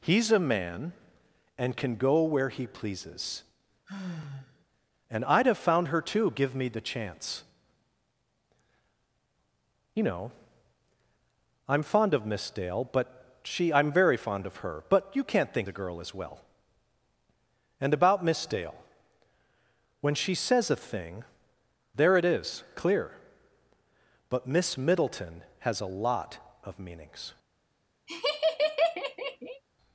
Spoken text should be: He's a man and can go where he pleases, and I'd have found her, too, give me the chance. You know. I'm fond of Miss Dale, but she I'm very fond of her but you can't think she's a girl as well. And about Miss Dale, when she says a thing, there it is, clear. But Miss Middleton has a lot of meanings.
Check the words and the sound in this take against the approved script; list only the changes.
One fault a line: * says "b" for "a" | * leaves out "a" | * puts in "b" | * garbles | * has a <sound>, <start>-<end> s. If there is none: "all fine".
* has a sigh, 3.9-4.6 s
* leaves out "she's"
* has a laugh, 28.1-29.6 s